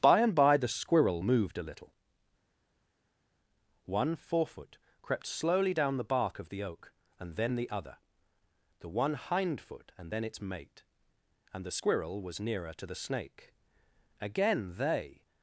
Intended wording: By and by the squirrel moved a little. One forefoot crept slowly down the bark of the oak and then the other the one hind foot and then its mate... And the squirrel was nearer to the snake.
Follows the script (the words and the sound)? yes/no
no